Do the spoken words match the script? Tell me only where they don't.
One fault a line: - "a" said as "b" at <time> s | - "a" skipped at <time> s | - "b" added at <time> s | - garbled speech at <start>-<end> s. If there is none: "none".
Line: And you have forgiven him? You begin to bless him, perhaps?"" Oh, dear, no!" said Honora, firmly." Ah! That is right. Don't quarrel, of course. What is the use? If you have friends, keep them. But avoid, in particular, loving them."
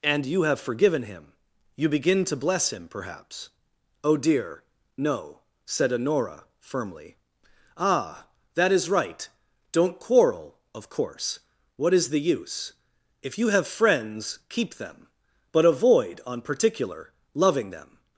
- "in" said as "on" at 16.2 s